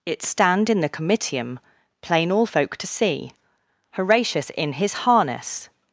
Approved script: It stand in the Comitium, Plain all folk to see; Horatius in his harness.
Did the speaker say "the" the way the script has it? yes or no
yes